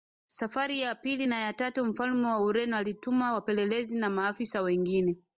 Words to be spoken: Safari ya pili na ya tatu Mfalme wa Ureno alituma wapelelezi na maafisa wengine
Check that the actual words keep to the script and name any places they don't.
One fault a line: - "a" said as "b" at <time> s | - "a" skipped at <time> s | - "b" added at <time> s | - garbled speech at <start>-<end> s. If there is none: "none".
none